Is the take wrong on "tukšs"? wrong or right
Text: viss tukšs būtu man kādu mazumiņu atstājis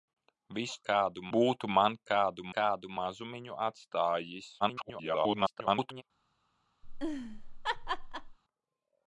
wrong